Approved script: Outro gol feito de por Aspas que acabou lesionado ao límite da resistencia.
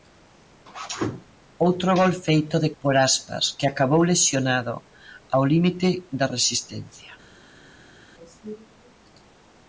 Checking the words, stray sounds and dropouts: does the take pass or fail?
pass